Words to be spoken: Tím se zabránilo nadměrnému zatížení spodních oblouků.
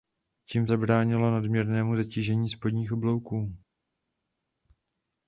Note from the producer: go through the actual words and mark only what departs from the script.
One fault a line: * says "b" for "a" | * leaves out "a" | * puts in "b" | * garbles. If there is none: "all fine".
* leaves out "se"